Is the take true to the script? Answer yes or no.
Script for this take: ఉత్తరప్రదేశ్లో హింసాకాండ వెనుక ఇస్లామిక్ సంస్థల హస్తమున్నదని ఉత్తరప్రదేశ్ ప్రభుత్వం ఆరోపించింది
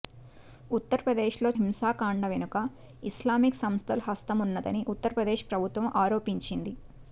yes